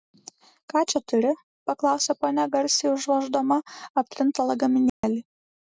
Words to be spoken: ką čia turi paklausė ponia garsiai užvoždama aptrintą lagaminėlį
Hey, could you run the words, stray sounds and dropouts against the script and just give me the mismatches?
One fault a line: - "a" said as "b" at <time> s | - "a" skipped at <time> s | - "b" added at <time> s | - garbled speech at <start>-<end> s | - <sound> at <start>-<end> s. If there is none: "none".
- dropout at 4.9-5.0 s